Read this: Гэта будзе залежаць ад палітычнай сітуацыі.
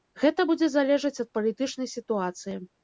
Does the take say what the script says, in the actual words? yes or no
yes